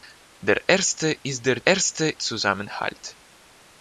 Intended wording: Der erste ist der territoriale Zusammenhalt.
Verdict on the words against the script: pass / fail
fail